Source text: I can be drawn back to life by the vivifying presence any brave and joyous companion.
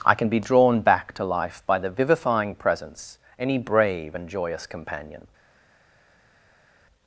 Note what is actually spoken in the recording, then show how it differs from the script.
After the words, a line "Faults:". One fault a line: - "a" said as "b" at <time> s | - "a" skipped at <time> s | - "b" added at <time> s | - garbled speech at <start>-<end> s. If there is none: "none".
I can be drawn back to life by the vivifying presence any brave and joyous companion.
Faults:
none